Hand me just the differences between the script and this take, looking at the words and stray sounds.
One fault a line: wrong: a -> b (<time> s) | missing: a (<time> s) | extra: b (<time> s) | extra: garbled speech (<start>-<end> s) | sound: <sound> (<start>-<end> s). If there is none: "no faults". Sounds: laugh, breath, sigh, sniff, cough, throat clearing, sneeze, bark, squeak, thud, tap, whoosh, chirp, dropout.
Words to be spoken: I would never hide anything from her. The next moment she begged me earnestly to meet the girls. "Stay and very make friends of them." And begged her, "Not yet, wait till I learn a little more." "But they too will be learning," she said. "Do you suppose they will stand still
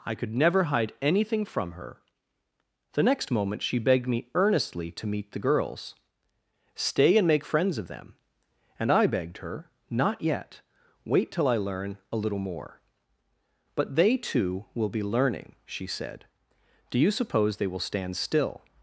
wrong: would -> could (0.1 s)
missing: very (7.3 s)
extra: I (8.9 s)